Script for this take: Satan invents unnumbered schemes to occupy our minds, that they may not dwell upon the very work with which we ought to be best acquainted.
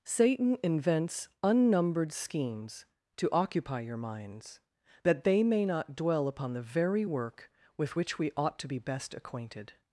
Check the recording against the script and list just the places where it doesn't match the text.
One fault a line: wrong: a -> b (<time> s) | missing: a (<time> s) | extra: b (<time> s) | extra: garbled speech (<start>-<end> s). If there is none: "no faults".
wrong: our -> your (3.8 s)